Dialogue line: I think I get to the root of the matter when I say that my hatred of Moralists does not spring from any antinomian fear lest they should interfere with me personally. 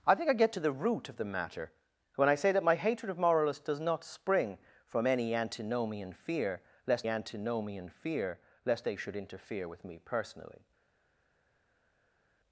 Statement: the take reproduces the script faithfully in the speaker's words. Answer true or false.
false